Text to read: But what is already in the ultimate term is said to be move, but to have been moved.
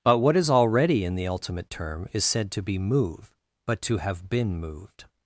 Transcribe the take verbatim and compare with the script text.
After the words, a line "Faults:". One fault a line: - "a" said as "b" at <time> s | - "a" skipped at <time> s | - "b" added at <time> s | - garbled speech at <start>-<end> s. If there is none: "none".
But what is already in the ultimate term is said to be move, but to have been moved.
Faults:
none